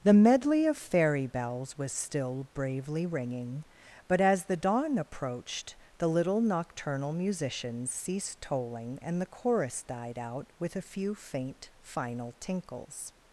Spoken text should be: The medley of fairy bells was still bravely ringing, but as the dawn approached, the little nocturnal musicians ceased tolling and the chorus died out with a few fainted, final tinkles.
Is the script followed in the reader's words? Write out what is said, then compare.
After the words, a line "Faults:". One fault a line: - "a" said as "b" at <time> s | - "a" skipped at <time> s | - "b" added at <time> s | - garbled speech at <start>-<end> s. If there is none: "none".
The medley of fairy bells was still bravely ringing, but as the dawn approached, the little nocturnal musicians ceased tolling and the chorus died out with a few faint, final tinkles.
Faults:
- "fainted" said as "faint" at 11.1 s